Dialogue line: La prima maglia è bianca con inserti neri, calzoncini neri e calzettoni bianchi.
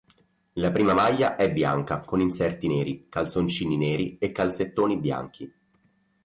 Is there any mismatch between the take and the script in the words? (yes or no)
no